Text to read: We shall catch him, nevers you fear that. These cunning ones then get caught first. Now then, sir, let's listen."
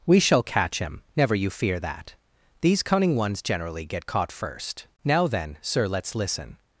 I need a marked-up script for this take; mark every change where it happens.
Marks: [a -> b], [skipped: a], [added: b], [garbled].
We shall catch him, [nevers -> never] you fear that. These cunning ones [then -> generally] get caught first. Now then, sir, let's listen."